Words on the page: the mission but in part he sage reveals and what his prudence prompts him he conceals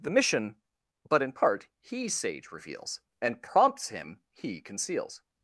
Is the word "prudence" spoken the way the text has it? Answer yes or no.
no